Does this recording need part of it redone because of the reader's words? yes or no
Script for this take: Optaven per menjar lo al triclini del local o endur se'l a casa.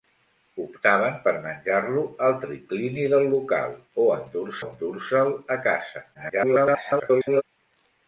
yes